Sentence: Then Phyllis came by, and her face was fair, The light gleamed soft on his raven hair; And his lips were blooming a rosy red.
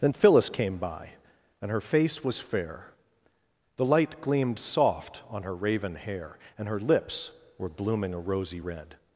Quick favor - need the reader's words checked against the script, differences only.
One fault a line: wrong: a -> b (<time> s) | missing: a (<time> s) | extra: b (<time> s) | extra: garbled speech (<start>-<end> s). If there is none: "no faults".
wrong: his -> her (5.4 s)
wrong: his -> her (6.7 s)